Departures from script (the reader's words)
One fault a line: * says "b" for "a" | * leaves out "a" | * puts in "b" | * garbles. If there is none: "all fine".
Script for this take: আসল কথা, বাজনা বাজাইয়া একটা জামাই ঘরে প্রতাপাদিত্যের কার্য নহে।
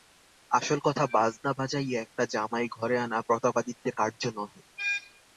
* puts in "আনা"